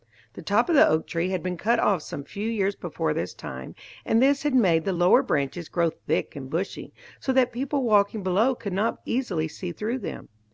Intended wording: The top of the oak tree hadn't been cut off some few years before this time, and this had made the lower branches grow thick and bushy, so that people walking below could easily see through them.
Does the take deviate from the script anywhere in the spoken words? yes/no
yes